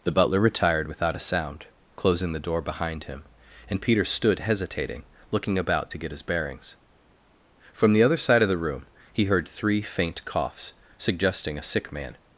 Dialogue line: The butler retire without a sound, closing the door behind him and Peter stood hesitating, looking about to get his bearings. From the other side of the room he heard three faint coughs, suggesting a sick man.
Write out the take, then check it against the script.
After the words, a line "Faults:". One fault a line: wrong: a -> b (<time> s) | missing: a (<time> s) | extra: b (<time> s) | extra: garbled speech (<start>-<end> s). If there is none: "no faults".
The butler retired without a sound, closing the door behind him and Peter stood hesitating, looking about to get his bearings. From the other side of the room he heard three faint coughs, suggesting a sick man.
Faults:
wrong: retire -> retired (0.4 s)